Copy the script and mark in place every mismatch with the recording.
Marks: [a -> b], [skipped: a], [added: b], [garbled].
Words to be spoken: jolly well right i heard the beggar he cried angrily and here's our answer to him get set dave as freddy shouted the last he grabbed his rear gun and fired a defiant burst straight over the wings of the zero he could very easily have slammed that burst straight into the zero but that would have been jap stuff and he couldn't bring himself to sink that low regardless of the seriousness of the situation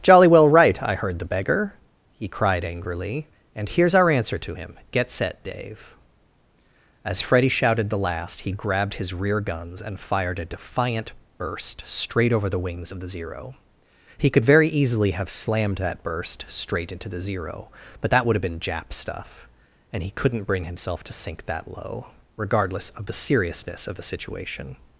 jolly well right i heard the beggar he cried angrily and here's our answer to him get set dave as freddy shouted the last he grabbed his rear [gun -> guns] and fired a defiant burst straight over the wings of the zero he could very easily have slammed that burst straight into the zero but that would have been jap stuff and he couldn't bring himself to sink that low regardless of the seriousness of the situation